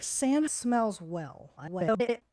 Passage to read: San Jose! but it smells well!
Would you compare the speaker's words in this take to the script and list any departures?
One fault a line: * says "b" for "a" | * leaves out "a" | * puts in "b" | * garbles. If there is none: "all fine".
* leaves out "Jose but it"
* garbles